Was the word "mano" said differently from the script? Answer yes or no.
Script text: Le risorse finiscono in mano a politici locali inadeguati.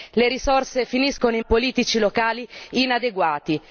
yes